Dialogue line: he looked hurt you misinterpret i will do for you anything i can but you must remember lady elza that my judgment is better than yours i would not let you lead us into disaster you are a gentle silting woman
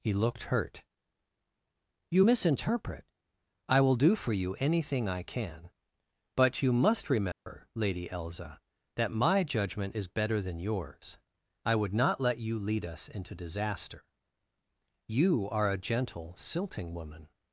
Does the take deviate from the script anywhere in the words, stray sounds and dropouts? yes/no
yes